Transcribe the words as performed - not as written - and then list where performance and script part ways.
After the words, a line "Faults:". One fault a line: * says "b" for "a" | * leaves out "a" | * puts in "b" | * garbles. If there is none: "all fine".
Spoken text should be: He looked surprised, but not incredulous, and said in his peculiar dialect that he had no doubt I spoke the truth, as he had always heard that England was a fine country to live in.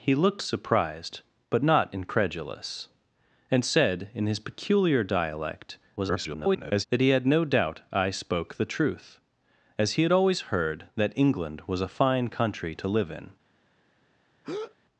He looked surprised, but not incredulous, and said in his peculiar dialect [garbled] that he had no doubt I spoke the truth, as he had always heard that England was a fine country to live in.
Faults:
* garbles